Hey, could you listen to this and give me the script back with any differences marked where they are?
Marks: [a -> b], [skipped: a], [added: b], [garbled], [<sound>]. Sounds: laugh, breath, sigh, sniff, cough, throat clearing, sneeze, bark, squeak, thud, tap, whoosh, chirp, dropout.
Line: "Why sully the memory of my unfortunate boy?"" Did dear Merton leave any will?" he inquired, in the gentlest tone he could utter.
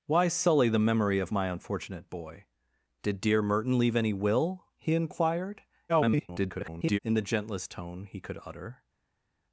"Why sully the memory of my unfortunate boy?"" Did dear Merton leave any will?" he inquired, [garbled] in the gentlest tone he could utter.